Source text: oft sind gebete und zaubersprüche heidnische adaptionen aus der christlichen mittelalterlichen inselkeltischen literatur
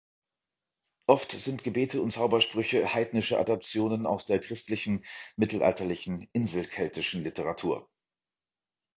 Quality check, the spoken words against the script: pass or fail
pass